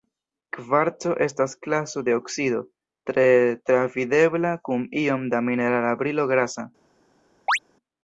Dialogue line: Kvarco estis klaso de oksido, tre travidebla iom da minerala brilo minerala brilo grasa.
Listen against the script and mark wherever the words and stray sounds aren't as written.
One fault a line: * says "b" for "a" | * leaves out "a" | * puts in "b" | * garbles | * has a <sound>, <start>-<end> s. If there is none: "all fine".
* says "estas" for "estis"
* puts in "kun"
* leaves out "minerala brilo"
* has a chirp, 7.5-7.6 s